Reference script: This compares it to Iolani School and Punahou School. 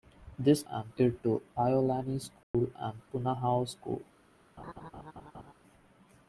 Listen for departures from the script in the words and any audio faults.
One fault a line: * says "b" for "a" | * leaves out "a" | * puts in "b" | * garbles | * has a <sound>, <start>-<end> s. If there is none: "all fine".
* says "and" for "compares"
* has a dropout, 2.4-2.5 s
* has a laugh, 4.6-5.5 s